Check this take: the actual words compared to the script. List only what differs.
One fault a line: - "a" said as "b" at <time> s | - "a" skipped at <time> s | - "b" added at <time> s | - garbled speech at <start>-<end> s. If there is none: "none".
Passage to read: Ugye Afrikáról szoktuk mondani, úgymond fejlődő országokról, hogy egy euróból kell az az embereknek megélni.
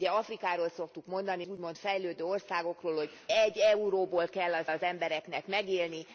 none